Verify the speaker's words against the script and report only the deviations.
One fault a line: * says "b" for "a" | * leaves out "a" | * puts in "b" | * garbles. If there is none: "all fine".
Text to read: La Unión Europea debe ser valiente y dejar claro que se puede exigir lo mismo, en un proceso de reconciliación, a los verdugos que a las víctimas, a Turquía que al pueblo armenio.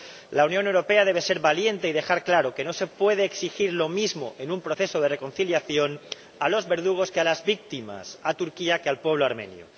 * puts in "no"